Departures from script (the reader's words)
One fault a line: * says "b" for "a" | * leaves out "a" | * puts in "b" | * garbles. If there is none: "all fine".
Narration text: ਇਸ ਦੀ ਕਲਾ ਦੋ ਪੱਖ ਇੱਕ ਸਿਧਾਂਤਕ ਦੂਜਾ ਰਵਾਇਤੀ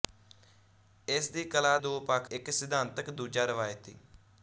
all fine